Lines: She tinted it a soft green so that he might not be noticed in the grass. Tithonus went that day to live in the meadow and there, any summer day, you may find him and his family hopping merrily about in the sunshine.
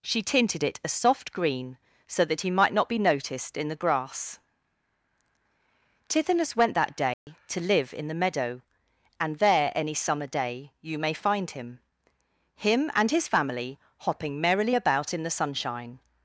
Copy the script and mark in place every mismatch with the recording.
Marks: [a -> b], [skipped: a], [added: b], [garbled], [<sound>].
She tinted it a soft green so that he might not be noticed in the grass. Tithonus went that day [dropout] to live in the meadow and there, any summer day, you may find him [added: him] and his family hopping merrily about in the sunshine.